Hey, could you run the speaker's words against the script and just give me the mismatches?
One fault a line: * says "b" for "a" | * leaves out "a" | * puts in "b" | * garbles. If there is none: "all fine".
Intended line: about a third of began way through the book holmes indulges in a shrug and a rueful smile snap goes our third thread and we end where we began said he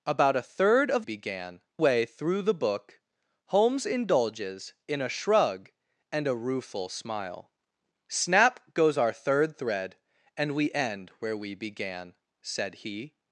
all fine